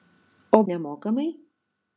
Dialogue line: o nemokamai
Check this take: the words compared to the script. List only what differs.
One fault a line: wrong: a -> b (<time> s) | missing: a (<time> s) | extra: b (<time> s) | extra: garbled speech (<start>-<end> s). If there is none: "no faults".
no faults